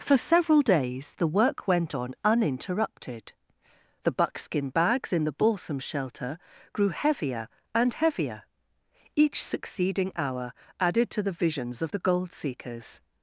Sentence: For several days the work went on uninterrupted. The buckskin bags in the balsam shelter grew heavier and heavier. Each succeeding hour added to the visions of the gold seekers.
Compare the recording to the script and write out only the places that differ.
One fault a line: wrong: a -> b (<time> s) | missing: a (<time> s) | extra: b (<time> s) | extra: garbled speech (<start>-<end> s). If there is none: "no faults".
no faults